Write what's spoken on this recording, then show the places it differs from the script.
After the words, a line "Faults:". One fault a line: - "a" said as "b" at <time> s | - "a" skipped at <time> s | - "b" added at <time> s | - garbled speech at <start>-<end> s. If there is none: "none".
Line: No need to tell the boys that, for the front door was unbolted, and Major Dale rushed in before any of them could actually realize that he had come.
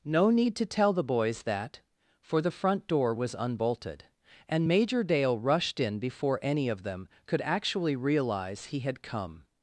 No need to tell the boys that, for the front door was unbolted, and Major Dale rushed in before any of them could actually realize he had come.
Faults:
- "that" skipped at 8.6 s